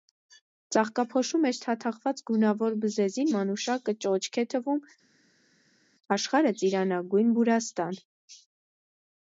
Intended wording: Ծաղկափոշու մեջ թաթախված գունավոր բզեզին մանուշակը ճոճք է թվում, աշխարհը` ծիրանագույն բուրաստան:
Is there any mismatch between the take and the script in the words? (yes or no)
no